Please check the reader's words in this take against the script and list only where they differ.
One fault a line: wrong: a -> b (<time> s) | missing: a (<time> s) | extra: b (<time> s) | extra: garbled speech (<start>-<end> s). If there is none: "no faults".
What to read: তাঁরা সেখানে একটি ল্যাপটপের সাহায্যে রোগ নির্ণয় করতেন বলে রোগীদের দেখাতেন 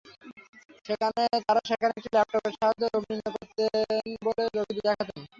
no faults